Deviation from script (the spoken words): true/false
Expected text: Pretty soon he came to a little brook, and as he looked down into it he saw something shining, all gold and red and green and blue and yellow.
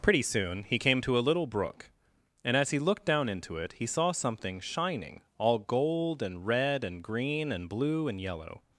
false